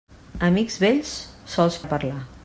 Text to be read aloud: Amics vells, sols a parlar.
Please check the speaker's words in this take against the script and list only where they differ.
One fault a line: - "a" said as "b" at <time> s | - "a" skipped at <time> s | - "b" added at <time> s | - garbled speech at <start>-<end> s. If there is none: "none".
none